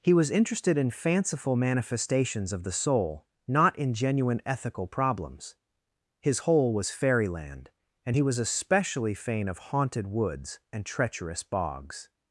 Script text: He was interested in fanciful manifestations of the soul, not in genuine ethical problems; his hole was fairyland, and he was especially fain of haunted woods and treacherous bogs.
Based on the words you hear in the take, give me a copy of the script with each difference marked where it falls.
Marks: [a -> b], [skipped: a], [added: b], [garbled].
He was interested in fanciful manifestations of the soul, not in genuine ethical problems; his hole was fairyland, and he was especially fain of haunted woods and treacherous bogs.